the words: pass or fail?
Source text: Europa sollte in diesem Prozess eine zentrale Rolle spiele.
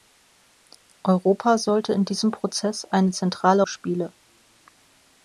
fail